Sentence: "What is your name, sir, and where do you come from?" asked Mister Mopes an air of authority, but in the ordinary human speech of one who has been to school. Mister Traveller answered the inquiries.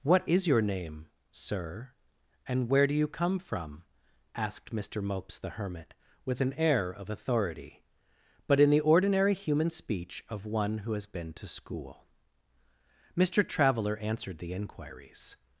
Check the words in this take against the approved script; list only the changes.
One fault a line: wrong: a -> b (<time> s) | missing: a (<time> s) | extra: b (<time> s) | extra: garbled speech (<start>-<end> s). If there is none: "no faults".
extra: the Hermit with (5.4 s)